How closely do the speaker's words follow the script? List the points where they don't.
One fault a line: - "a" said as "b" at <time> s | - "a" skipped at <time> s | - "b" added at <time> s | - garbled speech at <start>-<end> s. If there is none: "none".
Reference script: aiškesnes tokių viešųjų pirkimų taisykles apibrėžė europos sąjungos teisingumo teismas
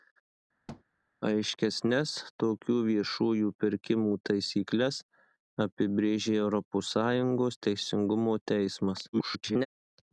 - garbled speech at 9.1-9.7 s